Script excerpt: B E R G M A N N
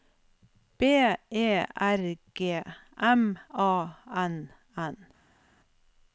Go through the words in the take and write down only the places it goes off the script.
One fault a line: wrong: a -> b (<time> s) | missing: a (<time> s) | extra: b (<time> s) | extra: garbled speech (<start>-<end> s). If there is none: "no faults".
no faults